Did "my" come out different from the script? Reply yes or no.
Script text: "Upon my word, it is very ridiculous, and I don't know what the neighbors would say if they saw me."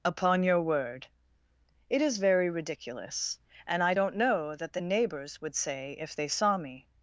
yes